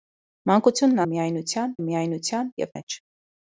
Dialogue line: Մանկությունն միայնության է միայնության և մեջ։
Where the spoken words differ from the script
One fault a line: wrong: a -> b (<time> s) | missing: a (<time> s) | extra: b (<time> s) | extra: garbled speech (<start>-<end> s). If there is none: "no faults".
no faults